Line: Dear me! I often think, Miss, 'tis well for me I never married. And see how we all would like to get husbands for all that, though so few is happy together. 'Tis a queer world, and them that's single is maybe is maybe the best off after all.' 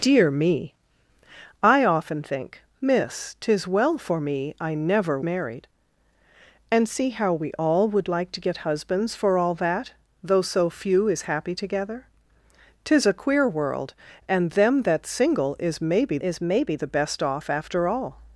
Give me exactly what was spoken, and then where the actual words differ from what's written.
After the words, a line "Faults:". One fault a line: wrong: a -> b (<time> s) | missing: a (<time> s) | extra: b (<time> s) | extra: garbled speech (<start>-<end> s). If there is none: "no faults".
Dear me! I often think, Miss, 'tis well for me I never married. And see how we all would like to get husbands for all that, though so few is happy together. 'Tis a queer world, and them that's single is maybe is maybe the best off after all.'
Faults:
no faults